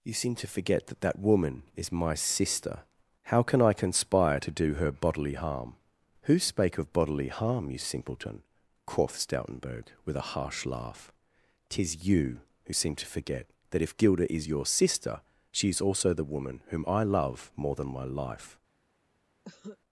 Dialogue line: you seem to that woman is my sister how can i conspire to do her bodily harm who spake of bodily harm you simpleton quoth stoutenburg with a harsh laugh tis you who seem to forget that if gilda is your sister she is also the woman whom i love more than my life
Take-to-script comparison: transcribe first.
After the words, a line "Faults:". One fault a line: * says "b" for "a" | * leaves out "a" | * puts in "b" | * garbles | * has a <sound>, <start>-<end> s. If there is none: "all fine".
you seem to forget that that woman is my sister how can i conspire to do her bodily harm who spake of bodily harm you simpleton quoth stoutenburg with a harsh laugh tis you who seem to forget that if gilda is your sister she is also the woman whom i love more than my life
Faults:
* puts in "forget that"
* has a cough, 19.4-19.8 s